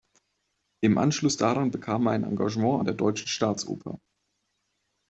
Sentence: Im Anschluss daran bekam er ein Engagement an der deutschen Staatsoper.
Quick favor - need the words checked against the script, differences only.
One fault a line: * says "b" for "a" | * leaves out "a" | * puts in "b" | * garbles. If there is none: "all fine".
all fine